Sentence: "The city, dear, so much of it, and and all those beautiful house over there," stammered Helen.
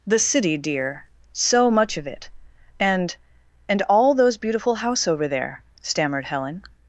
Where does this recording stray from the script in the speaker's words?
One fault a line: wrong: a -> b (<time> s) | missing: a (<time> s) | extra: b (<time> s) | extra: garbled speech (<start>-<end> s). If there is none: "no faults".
no faults